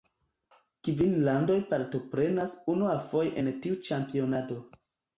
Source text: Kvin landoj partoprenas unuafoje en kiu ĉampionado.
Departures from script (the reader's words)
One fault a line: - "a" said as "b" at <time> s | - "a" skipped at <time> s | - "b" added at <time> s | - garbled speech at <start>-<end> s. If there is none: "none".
- "kiu" said as "tiu" at 3.7 s